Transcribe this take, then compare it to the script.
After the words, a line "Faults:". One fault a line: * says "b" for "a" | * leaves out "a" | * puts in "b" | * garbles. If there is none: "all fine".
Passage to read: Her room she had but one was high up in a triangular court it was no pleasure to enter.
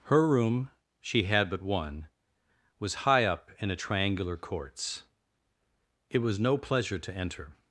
Her room she had but one was high up in a triangular courts it was no pleasure to enter.
Faults:
* says "courts" for "court"